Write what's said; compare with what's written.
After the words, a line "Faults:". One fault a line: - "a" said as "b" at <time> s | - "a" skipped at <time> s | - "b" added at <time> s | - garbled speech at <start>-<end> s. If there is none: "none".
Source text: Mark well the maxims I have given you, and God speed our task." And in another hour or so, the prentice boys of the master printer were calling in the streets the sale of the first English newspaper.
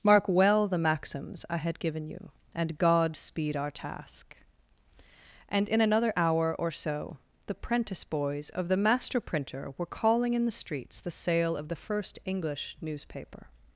Mark well the maxims I had given you, and God speed our task." And in another hour or so, the prentice boys of the master printer were calling in the streets the sale of the first English newspaper.
Faults:
- "have" said as "had" at 1.6 s